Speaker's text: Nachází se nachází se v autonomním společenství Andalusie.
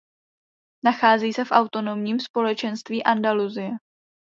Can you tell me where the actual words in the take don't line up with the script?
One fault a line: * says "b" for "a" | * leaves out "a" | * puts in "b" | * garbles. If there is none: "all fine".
* leaves out "nachází se"